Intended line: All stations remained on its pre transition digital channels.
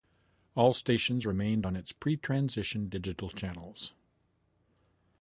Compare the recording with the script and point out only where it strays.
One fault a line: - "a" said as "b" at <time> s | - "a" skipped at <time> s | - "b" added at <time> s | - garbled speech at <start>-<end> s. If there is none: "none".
none